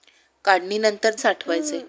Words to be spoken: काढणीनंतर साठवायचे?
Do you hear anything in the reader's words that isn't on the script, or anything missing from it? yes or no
no